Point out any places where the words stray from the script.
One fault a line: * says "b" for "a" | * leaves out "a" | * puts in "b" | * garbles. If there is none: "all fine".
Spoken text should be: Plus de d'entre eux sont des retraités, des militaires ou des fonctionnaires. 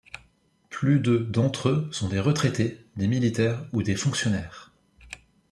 all fine